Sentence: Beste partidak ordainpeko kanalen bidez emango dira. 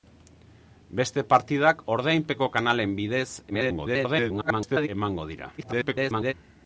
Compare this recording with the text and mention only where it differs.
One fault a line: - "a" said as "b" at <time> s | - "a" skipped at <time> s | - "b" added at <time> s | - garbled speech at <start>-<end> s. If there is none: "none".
- garbled speech at 3.5-4.9 s
- garbled speech at 5.6-6.3 s